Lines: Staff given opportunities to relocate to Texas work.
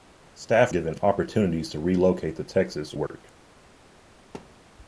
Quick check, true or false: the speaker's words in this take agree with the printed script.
true